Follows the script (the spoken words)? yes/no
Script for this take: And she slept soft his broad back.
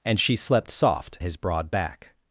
yes